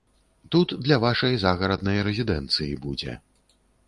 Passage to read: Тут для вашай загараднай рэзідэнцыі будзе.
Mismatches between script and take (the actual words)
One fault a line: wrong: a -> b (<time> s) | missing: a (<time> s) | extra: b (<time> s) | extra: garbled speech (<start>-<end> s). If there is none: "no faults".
no faults